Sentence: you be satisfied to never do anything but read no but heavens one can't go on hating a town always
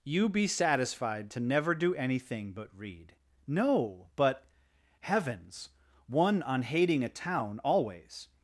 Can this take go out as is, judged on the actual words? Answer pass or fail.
fail